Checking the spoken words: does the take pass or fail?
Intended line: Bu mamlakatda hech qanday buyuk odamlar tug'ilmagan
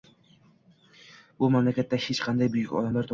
pass